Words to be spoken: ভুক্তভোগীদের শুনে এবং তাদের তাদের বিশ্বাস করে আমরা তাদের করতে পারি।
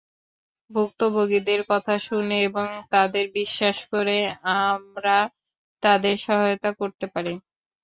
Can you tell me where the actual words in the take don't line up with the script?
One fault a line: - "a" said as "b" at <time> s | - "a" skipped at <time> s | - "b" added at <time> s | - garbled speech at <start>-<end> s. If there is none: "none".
- "কথা" added at 1.7 s
- "তাদের" skipped at 3.2 s
- "সহায়তা" added at 6.2 s